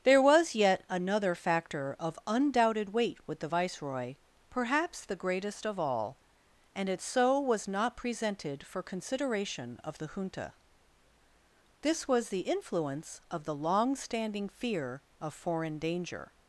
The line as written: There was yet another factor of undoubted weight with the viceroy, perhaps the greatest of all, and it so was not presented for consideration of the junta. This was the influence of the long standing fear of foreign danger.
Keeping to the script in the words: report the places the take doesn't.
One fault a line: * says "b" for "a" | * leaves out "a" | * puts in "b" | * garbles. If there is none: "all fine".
all fine